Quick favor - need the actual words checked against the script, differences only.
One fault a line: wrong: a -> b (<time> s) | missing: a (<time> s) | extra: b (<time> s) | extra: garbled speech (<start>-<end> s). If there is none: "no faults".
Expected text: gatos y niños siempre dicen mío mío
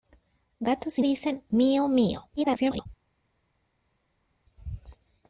missing: niños siempre (1.0 s)
extra: garbled speech (2.4-2.9 s)